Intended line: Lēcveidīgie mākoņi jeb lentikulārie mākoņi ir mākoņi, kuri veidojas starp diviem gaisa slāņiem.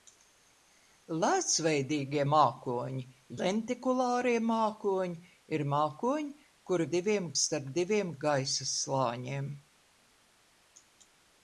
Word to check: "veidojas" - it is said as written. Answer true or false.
false